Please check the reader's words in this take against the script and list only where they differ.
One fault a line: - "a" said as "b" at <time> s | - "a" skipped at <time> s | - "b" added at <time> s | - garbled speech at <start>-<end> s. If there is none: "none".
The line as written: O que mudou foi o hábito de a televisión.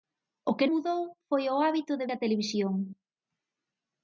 none